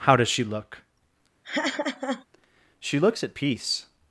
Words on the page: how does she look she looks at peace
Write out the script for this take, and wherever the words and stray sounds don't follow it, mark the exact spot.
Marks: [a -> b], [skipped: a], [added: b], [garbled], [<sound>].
how does she look [laugh] she looks at peace